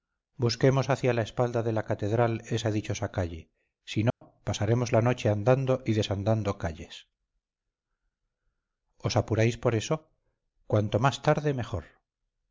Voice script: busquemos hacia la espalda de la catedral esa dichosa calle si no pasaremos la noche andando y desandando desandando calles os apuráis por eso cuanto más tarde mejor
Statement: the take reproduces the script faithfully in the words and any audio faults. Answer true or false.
false